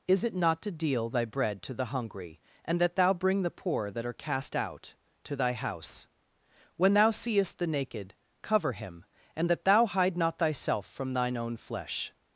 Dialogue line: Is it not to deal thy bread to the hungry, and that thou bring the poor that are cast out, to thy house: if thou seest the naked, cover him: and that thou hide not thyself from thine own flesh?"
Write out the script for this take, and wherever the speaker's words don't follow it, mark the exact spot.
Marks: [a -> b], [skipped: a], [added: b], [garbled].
Is it not to deal thy bread to the hungry, and that thou bring the poor that are cast out, to thy house: [if -> when] thou seest the naked, cover him: and that thou hide not thyself from thine own flesh?"